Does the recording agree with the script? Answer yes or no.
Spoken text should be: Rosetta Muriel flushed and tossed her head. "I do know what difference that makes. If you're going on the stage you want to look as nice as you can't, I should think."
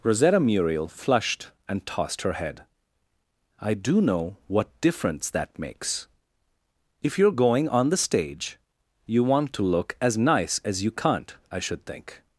yes